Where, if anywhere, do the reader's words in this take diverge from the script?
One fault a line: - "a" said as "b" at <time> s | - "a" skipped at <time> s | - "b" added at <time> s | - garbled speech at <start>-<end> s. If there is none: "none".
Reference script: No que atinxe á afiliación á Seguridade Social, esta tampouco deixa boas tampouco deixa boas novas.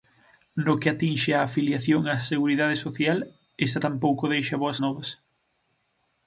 - "tampouco deixa boas" skipped at 4.8 s